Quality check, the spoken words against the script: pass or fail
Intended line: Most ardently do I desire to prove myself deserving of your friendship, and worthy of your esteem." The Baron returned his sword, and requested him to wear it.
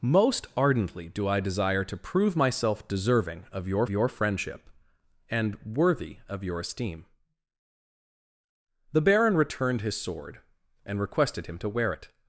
fail